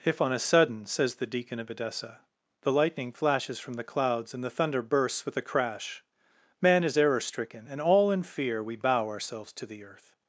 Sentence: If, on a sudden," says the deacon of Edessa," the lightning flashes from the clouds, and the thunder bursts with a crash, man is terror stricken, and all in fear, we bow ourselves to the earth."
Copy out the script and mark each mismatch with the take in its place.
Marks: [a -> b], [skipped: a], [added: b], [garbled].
If, on a sudden," says the deacon of Edessa," the lightning flashes from the clouds, and the thunder bursts with a crash, man is [terror -> error] stricken, and all in fear, we bow ourselves to the earth."